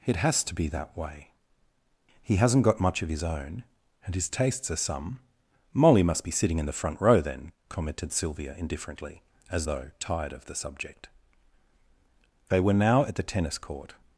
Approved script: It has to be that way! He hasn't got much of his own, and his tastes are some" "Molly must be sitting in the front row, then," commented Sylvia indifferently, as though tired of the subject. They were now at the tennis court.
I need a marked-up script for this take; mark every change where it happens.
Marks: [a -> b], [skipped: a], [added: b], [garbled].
It has to be that way! He hasn't got much of his own, and his tastes are some" "Molly must be sitting in the front row, then," commented Sylvia indifferently, as though tired of the subject. They were now at the tennis court.